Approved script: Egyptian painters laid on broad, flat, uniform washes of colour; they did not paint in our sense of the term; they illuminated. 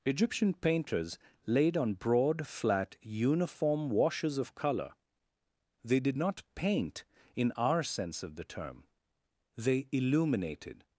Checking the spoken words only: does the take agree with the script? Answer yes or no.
yes